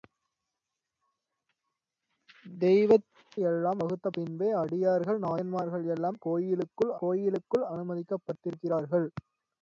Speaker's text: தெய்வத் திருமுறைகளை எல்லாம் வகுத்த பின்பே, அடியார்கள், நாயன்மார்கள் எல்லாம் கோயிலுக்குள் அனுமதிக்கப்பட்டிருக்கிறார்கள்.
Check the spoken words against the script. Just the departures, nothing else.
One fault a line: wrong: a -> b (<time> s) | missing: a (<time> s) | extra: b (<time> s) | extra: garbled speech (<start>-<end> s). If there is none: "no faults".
missing: திருமுறைகளை (3.0 s)
extra: கோயிலுக்குள் (7.0 s)